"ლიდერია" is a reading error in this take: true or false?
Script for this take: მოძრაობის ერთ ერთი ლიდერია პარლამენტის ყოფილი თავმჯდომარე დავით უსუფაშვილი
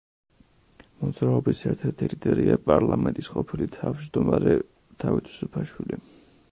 false